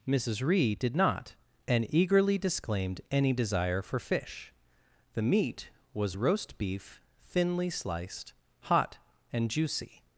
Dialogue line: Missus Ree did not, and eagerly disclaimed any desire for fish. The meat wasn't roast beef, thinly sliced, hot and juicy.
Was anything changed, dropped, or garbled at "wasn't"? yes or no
yes